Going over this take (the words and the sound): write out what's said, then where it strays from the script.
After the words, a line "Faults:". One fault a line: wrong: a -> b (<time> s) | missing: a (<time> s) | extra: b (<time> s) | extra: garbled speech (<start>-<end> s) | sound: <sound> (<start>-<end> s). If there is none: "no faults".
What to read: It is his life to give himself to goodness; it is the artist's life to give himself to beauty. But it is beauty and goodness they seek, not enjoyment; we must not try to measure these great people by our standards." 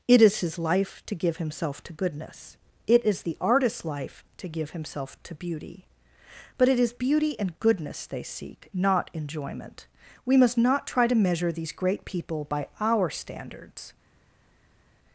It is his life to give himself to goodness; it is the artist's life to give himself to beauty. But it is beauty and goodness they seek, not enjoyment; we must not try to measure these great people by our standards."
Faults:
no faults